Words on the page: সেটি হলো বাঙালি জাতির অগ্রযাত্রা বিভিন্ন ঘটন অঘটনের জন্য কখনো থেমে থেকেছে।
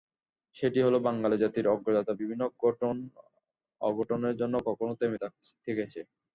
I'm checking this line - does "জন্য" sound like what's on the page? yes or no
yes